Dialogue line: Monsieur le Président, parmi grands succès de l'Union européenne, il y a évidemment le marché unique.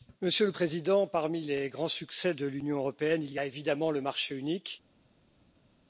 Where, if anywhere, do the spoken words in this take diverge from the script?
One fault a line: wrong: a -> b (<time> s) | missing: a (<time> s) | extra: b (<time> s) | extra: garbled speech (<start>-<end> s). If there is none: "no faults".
extra: les (1.4 s)